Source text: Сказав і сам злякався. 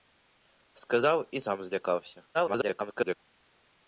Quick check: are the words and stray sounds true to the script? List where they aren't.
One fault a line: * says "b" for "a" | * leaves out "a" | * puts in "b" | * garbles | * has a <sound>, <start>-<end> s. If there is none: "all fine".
* garbles